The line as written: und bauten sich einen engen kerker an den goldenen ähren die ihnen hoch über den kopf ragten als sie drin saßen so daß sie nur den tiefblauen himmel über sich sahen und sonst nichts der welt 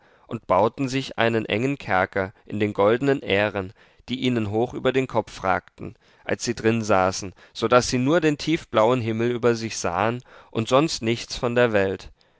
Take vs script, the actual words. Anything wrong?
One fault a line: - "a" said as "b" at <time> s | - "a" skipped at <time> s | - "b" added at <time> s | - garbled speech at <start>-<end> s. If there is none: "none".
- "an" said as "in" at 2.5 s
- "von" added at 11.4 s